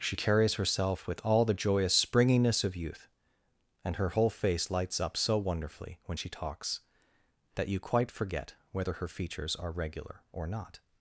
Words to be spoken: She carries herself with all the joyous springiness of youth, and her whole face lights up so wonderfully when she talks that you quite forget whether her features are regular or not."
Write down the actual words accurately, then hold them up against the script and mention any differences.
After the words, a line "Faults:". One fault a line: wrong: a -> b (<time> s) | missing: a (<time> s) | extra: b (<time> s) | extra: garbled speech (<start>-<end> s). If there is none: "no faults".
She carries herself with all the joyous springiness of youth, and her whole face lights up so wonderfully when she talks that you quite forget whether her features are regular or not."
Faults:
no faults